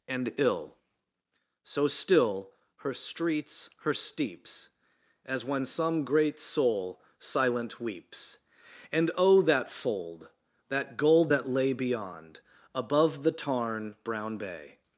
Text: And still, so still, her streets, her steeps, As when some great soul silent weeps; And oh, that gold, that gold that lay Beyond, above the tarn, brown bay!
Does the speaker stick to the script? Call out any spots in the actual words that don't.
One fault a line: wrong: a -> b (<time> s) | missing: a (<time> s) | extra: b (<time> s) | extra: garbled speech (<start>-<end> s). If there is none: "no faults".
wrong: still -> ill (0.4 s)
wrong: gold -> fold (9.7 s)